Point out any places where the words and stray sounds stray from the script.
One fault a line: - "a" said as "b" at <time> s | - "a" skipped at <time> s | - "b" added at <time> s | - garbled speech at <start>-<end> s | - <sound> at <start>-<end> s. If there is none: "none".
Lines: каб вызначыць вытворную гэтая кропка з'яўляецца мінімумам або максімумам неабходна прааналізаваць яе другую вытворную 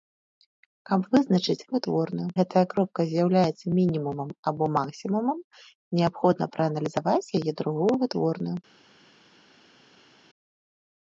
none